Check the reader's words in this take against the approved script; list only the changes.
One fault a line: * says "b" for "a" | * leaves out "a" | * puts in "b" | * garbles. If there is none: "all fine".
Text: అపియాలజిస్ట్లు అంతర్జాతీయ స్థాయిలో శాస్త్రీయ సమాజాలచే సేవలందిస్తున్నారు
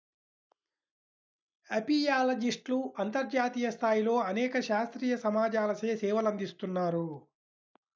* puts in "అనేక"